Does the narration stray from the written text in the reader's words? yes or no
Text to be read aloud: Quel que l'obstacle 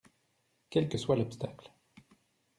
yes